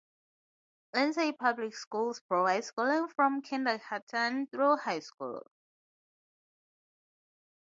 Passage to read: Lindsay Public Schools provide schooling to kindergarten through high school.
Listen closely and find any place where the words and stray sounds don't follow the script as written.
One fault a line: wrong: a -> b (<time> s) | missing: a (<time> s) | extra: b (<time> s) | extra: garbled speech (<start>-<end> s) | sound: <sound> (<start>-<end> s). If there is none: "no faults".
wrong: to -> from (3.1 s)